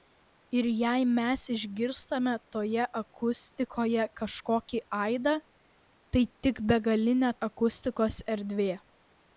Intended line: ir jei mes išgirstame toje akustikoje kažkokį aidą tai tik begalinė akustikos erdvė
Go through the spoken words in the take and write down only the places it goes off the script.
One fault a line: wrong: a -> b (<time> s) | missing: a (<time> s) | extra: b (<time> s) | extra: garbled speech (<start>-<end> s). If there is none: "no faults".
no faults